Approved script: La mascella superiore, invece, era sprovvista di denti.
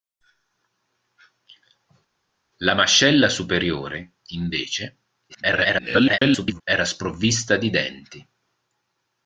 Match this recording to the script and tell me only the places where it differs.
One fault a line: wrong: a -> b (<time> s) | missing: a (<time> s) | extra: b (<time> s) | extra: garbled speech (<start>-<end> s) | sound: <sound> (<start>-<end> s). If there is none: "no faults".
extra: garbled speech (5.3-6.6 s)